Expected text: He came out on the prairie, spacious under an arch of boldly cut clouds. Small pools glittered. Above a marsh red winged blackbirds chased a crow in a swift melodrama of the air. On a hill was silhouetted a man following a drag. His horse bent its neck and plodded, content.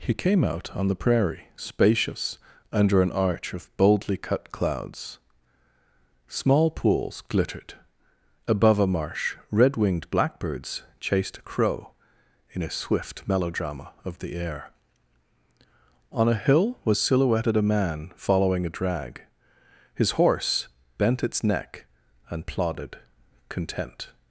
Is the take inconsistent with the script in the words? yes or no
no